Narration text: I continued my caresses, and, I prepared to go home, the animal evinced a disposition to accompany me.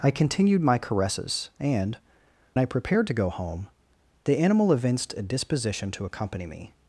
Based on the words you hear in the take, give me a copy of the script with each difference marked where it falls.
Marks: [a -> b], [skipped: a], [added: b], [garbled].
I continued my caresses, and, I prepared to go home, the animal evinced a disposition to accompany me.